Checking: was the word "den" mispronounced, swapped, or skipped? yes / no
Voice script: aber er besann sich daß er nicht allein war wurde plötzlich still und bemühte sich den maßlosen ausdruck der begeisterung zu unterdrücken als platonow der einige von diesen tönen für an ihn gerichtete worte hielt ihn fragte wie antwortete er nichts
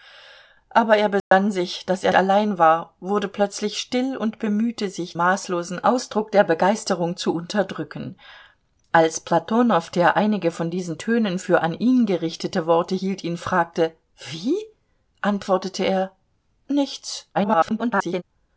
yes